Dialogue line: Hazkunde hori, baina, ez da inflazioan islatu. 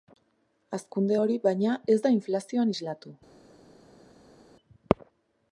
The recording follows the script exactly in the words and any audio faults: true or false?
true